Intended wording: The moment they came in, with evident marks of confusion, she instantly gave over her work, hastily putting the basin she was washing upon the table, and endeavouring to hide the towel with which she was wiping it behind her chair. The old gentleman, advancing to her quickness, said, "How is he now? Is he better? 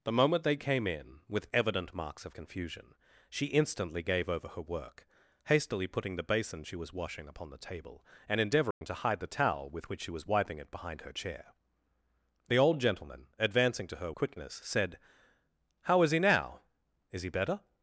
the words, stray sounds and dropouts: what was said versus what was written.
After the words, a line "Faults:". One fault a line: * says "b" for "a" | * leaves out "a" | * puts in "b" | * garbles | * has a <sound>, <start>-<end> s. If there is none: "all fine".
The moment they came in, with evident marks of confusion, she instantly gave over her work, hastily putting the basin she was washing upon the table, and endeavouring to hide the towel with which she was wiping it behind her chair. The old gentleman, advancing to her quickness, said, "How is he now? Is he better?
Faults:
* has a dropout, 8.7-8.8 s